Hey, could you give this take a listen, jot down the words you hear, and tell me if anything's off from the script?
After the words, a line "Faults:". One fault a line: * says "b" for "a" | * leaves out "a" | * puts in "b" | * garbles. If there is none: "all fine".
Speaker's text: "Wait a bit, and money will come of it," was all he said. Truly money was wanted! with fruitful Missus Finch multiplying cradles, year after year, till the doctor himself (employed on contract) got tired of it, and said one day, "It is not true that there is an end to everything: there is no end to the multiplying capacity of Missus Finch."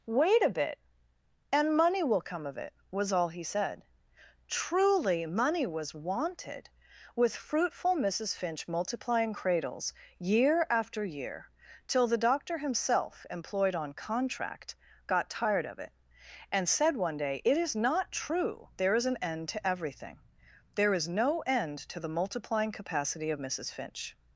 "Wait a bit, and money will come of it," was all he said. Truly money was wanted! with fruitful Missus Finch multiplying cradles, year after year, till the doctor himself (employed on contract) got tired of it, and said one day, "It is not true there is an end to everything: there is no end to the multiplying capacity of Missus Finch."
Faults:
* leaves out "that"